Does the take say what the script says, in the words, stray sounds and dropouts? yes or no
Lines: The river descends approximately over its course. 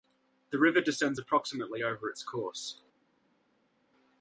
yes